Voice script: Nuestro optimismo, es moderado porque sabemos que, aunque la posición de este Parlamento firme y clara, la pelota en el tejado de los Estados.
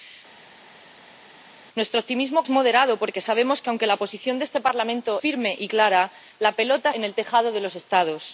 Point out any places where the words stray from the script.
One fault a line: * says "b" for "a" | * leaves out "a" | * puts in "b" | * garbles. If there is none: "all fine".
all fine